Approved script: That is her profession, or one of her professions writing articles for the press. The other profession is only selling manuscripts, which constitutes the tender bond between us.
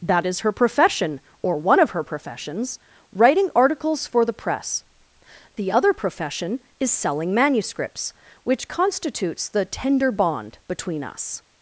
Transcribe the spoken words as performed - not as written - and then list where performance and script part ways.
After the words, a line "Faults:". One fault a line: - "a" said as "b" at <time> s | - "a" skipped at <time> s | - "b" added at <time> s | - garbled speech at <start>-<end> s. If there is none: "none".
That is her profession, or one of her professions writing articles for the press. The other profession is selling manuscripts, which constitutes the tender bond between us.
Faults:
- "only" skipped at 6.9 s